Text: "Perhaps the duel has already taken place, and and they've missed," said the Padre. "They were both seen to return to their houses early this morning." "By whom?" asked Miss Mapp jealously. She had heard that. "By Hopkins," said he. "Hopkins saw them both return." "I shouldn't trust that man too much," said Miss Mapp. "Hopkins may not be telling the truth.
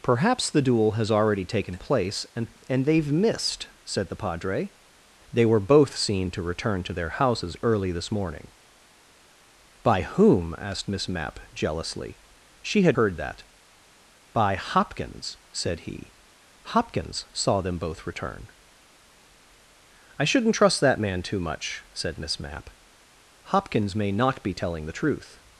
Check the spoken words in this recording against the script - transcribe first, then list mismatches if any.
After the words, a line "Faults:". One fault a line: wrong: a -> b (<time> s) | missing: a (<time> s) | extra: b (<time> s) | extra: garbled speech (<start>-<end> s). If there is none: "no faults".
"Perhaps the duel has already taken place, and and they've missed," said the Padre. "They were both seen to return to their houses early this morning." "By whom?" asked Miss Mapp jealously. She had heard that. "By Hopkins," said he. "Hopkins saw them both return." "I shouldn't trust that man too much," said Miss Mapp. "Hopkins may not be telling the truth.
Faults:
no faults